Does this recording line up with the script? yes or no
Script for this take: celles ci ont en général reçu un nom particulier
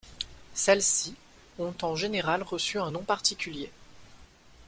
yes